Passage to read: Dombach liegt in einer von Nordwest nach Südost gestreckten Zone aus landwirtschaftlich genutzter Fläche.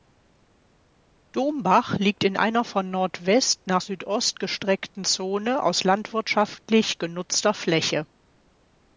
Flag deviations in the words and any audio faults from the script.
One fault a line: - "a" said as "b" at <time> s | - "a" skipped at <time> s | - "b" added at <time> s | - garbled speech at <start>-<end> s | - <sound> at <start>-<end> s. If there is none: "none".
none